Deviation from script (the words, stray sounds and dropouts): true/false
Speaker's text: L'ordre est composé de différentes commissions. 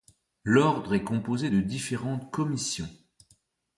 false